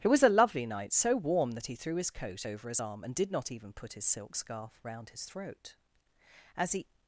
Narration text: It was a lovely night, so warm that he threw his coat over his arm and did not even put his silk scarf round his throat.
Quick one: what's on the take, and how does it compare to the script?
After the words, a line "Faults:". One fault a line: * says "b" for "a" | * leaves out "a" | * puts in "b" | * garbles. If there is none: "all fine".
It was a lovely night, so warm that he threw his coat over his arm and did not even put his silk scarf round his throat. As he
Faults:
* puts in "As he"